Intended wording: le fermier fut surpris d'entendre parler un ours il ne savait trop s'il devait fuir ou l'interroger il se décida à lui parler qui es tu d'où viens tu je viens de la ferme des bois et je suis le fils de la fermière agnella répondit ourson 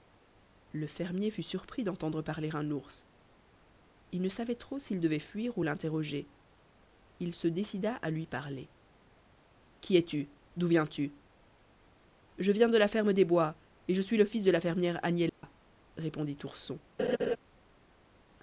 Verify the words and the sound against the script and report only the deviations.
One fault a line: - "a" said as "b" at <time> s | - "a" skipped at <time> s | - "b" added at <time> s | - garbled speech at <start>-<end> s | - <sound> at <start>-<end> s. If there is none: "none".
- dropout at 15.3-15.4 s
- laugh at 17.0-17.4 s